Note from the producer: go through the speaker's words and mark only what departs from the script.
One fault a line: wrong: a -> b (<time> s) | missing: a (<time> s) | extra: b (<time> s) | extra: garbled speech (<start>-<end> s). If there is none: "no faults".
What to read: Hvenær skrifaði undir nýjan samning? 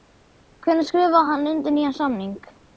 extra: hann (1.3 s)